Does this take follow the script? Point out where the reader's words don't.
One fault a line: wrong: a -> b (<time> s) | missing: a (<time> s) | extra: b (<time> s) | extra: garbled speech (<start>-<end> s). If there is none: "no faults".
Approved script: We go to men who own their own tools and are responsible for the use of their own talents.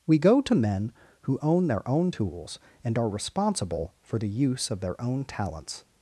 no faults